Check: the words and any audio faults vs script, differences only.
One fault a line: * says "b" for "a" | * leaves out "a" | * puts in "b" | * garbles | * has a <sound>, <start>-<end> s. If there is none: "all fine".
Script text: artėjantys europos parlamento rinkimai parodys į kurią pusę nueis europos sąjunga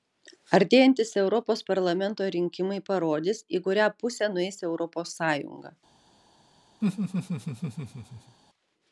* has a laugh, 6.8-8.4 s